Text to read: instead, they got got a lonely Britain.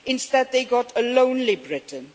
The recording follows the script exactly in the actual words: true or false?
false